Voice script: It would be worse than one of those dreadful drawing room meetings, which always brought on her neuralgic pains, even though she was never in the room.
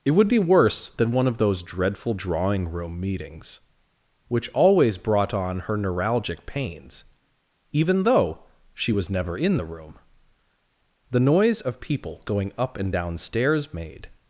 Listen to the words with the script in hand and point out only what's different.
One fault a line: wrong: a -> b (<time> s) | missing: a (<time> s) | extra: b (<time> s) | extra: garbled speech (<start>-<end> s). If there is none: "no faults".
extra: The noise of people going up and down stairs made (11.1 s)